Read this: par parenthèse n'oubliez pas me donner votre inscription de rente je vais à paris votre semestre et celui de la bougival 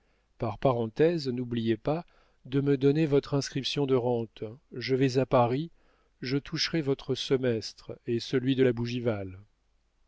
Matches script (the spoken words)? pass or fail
fail